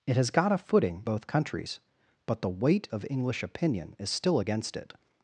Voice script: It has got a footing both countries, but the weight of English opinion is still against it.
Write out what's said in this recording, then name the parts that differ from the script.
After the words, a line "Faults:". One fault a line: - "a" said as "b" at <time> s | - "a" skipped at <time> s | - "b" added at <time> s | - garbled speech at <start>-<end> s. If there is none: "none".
It has got a footing both countries, but the weight of English opinion is still against it.
Faults:
none